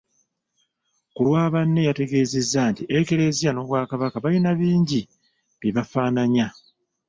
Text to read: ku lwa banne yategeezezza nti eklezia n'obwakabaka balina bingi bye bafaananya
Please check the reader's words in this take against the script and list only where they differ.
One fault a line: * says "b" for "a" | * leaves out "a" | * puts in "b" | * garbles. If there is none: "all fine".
all fine